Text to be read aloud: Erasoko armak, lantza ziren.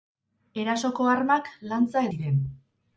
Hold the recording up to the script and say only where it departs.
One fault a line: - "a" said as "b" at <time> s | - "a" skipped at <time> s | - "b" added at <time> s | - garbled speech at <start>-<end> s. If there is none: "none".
none